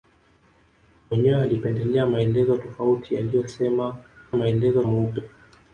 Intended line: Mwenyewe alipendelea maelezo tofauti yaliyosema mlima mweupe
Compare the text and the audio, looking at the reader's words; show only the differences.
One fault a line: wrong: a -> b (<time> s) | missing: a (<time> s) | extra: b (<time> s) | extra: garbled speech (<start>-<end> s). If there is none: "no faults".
wrong: mlima -> maelezo (4.3 s)